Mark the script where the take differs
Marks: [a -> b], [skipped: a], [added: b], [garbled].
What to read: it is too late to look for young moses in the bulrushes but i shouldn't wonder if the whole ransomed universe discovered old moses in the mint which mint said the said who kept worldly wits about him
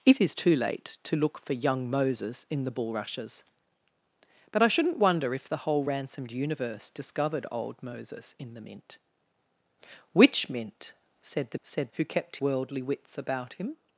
it is too late to look for young moses in the bulrushes but i shouldn't wonder if the whole ransomed universe discovered old moses in the mint which mint said the said who kept worldly wits about him